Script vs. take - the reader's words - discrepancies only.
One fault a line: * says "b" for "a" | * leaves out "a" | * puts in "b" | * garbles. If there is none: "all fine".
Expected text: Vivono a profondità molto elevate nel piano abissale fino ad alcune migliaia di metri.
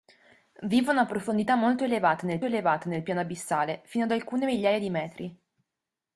* puts in "elevate nel"